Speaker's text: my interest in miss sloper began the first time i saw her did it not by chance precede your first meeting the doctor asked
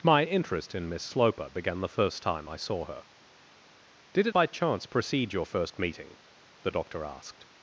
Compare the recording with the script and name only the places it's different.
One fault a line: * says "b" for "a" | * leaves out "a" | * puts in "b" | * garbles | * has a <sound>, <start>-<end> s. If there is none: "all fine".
* leaves out "not"